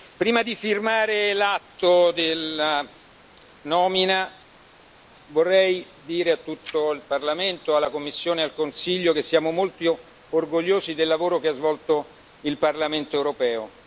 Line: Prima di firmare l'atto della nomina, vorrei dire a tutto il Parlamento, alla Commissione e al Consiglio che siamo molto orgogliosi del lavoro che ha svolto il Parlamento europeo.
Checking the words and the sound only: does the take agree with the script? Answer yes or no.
yes